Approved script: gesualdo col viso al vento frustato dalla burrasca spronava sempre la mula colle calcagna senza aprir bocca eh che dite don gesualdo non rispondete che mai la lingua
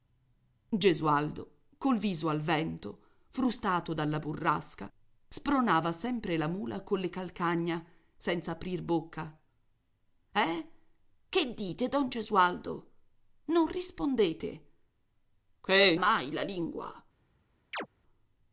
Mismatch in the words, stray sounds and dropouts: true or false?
true